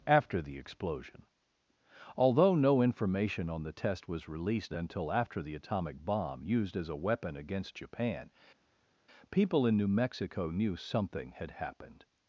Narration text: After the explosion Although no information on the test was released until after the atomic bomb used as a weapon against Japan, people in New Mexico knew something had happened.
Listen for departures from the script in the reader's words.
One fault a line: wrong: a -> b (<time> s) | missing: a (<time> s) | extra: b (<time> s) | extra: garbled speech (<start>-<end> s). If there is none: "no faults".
no faults